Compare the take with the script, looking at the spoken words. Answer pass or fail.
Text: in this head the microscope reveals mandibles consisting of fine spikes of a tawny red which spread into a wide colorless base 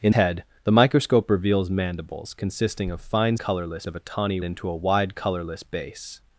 fail